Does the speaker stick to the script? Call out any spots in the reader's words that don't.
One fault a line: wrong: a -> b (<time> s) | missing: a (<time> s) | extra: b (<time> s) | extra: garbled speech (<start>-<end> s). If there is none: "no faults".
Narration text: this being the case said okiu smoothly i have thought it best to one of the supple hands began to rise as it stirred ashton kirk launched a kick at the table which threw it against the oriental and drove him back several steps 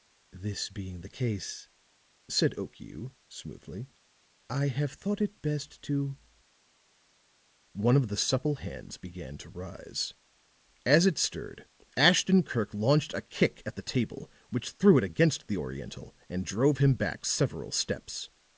no faults